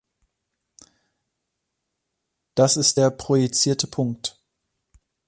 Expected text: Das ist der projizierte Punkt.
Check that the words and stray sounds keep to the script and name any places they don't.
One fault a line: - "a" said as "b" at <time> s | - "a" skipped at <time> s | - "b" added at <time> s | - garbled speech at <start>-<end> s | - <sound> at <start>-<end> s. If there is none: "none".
none